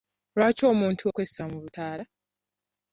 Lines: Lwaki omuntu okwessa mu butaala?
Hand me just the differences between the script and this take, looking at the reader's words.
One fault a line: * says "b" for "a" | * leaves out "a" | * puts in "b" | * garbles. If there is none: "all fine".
all fine